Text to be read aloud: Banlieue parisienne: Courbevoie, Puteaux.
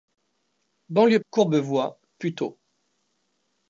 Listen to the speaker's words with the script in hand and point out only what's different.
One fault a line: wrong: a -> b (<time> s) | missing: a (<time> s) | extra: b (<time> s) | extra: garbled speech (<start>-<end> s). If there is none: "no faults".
missing: parisienne (1.2 s)